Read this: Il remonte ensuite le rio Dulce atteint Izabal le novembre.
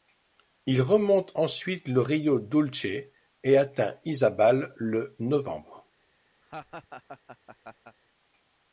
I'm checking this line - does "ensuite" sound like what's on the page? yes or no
yes